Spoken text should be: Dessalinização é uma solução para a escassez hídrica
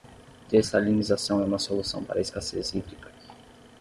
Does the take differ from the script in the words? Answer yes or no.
no